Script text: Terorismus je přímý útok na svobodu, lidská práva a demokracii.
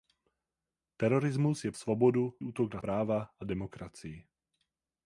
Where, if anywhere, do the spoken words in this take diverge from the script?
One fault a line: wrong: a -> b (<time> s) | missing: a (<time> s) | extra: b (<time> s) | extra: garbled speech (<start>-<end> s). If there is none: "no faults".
wrong: přímý -> svobodu (1.7 s)
missing: svobodu lidská (2.8 s)